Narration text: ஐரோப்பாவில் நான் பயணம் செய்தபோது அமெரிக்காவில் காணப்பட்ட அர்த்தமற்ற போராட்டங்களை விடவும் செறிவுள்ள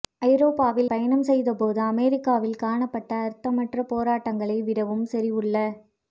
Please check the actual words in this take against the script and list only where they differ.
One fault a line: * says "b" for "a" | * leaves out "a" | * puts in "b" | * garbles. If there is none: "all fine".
* leaves out "நான்"